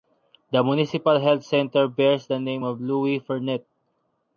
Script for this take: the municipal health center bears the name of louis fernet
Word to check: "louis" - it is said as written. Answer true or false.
true